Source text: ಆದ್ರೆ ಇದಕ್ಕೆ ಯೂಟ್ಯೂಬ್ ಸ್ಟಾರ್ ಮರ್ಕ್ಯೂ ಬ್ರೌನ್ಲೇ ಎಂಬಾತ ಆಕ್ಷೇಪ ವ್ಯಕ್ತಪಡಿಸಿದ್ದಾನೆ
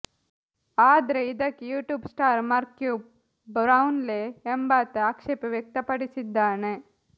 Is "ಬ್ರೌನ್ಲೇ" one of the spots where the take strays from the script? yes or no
no